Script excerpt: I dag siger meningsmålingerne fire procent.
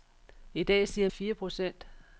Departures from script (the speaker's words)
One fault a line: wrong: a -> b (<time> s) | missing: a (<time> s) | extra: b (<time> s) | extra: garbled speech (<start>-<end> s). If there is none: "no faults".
missing: meningsmålingerne (1.1 s)